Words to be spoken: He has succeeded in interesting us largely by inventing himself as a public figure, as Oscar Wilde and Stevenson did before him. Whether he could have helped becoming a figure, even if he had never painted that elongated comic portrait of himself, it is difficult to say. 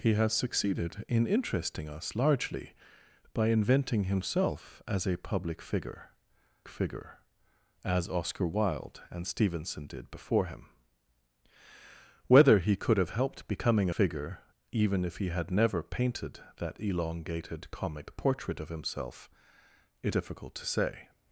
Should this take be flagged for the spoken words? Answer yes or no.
yes